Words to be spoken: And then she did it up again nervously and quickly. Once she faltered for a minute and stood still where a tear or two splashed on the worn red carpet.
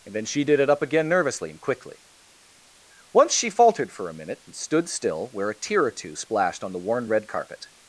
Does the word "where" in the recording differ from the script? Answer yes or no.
no